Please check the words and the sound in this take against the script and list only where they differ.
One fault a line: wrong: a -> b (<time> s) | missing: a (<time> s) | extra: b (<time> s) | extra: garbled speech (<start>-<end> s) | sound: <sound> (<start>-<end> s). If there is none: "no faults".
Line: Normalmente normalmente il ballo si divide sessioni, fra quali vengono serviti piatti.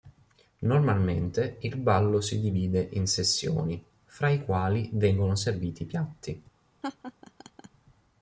missing: normalmente (1.6 s)
extra: in (2.9 s)
extra: i (4.3 s)
sound: laugh (6.8-7.7 s)